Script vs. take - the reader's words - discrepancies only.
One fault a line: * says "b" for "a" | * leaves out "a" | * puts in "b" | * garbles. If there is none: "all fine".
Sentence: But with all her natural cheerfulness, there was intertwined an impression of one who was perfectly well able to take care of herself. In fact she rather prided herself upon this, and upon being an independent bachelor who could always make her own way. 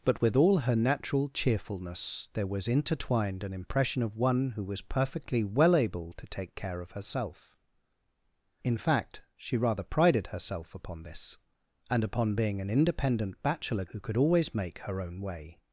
all fine